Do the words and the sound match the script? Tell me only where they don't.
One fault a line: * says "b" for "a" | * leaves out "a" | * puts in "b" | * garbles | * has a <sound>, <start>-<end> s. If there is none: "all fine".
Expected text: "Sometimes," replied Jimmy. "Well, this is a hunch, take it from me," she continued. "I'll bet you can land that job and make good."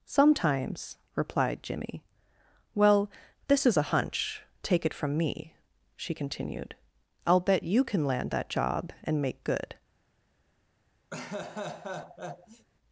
* has a laugh, 11.1-12.7 s